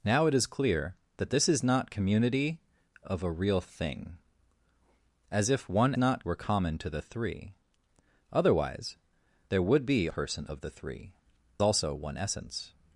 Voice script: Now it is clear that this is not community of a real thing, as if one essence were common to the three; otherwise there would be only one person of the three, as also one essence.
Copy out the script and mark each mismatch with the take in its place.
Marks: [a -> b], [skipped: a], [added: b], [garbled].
Now it is clear that this is not community of a real thing, as if one [essence -> not] were common to the three; otherwise there would be [skipped: only one] person of the three, [skipped: as] also one essence.